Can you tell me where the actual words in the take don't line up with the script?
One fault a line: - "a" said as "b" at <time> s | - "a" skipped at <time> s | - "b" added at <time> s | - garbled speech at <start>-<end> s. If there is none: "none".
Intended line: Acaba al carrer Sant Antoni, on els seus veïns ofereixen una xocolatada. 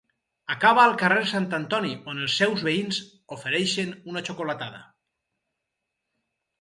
none